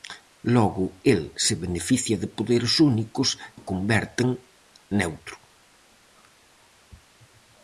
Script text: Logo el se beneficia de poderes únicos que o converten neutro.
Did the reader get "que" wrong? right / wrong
wrong